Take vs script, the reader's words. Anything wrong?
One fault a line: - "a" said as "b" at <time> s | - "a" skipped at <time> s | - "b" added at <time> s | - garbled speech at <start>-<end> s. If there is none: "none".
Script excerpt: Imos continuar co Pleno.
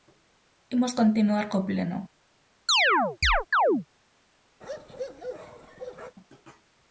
none